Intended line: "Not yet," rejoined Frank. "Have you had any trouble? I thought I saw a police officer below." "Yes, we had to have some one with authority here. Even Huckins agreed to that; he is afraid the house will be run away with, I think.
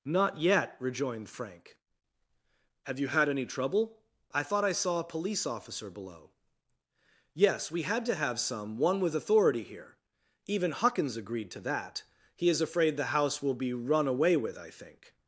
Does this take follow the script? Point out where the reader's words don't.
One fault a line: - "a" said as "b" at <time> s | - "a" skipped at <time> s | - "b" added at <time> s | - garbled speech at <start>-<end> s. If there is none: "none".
none